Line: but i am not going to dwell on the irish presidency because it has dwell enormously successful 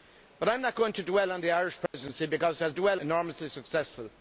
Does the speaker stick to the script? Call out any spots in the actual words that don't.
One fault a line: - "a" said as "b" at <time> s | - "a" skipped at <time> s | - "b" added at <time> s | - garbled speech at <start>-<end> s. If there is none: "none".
none